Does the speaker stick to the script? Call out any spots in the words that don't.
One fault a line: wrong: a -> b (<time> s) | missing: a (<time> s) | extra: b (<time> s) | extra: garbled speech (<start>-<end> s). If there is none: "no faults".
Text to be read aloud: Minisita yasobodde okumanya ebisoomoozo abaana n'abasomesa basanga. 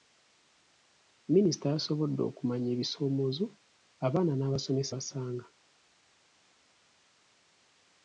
no faults